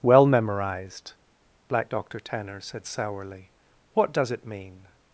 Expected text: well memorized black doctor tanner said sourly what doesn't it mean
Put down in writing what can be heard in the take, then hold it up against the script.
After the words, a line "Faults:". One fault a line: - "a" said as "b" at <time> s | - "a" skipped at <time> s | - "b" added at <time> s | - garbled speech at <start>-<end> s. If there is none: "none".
well memorized black doctor tanner said sourly what does it mean
Faults:
- "doesn't" said as "does" at 4.1 s